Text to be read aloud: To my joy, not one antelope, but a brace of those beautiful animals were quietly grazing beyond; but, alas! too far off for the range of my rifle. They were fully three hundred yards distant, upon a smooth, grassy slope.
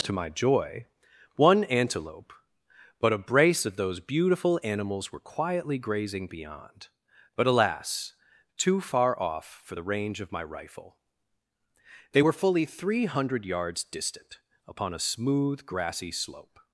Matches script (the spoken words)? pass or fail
fail